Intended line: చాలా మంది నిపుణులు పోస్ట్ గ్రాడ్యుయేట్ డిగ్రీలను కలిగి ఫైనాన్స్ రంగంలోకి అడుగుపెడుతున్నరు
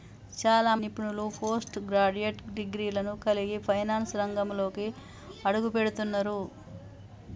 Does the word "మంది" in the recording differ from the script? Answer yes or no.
yes